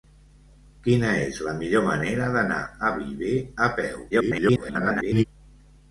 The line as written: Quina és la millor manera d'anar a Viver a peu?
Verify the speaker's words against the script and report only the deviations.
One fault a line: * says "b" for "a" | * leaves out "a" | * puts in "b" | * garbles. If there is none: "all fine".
* garbles